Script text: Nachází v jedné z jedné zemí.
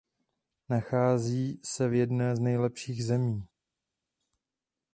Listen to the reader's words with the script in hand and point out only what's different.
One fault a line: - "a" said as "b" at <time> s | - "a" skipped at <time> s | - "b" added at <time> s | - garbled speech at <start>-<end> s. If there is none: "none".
- "se" added at 1.6 s
- "jedné" said as "nejlepších" at 2.4 s